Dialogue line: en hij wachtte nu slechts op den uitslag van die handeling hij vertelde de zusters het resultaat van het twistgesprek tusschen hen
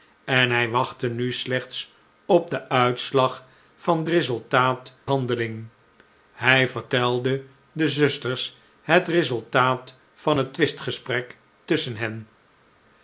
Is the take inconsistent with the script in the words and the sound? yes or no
yes